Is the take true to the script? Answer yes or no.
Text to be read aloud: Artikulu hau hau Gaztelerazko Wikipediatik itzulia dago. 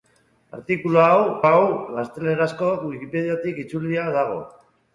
yes